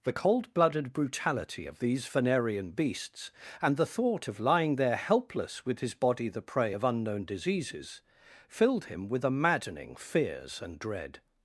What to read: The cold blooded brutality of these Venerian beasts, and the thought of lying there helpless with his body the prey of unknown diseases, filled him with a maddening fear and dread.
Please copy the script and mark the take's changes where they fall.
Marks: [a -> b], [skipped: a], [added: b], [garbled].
The cold blooded brutality of these Venerian beasts, and the thought of lying there helpless with his body the prey of unknown diseases, filled him with a maddening [fear -> fears] and dread.